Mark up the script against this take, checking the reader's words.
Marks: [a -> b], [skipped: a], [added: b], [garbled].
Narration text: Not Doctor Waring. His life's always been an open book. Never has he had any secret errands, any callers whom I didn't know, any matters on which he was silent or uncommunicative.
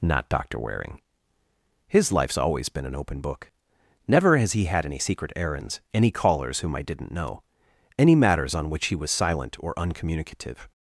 Not Doctor Waring. His life's always been an open book. Never has he had any secret errands, any callers whom I didn't know, any matters on which he was silent or uncommunicative.